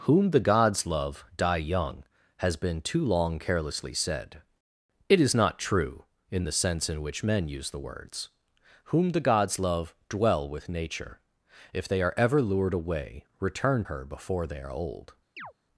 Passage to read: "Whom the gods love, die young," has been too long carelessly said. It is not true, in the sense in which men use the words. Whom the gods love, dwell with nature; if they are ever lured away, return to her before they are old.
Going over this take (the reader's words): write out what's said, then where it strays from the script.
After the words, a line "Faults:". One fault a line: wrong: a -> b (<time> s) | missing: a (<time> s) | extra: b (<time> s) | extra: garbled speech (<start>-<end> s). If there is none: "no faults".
"Whom the gods love, die young," has been too long carelessly said. It is not true, in the sense in which men use the words. Whom the gods love, dwell with nature; if they are ever lured away, return her before they are old.
Faults:
missing: to (13.8 s)